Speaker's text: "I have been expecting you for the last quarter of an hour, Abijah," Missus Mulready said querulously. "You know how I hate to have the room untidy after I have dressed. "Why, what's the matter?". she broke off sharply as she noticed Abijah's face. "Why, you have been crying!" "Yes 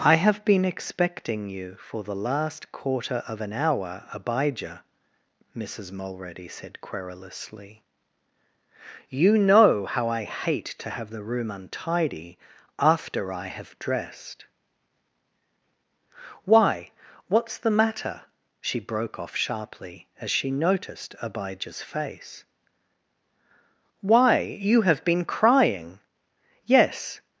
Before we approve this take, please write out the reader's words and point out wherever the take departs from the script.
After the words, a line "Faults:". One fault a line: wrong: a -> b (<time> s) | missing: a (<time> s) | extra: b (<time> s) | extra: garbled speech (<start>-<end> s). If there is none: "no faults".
"I have been expecting you for the last quarter of an hour, Abijah," Missus Mulready said querulously. "You know how I hate to have the room untidy after I have dressed. "Why, what's the matter?". she broke off sharply as she noticed Abijah's face. "Why, you have been crying!" "Yes
Faults:
no faults